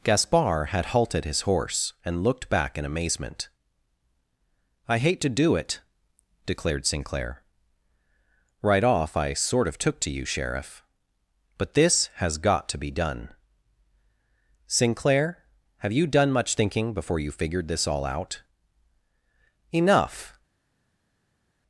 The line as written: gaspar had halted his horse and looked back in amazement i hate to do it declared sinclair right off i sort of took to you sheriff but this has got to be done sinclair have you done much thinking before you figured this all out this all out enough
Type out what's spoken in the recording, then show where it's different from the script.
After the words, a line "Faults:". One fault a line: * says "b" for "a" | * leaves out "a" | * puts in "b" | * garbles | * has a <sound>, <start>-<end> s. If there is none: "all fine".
gaspar had halted his horse and looked back in amazement i hate to do it declared sinclair right off i sort of took to you sheriff but this has got to be done sinclair have you done much thinking before you figured this all out enough
Faults:
* leaves out "this all out"